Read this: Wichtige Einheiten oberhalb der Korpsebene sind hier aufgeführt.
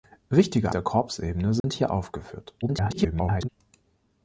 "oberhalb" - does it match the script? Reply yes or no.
no